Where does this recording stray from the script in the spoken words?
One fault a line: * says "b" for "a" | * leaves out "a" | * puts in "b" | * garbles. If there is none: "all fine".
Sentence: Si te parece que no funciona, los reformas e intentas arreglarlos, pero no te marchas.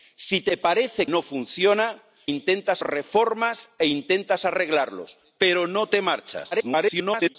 * leaves out "que"
* says "intentas" for "los"
* garbles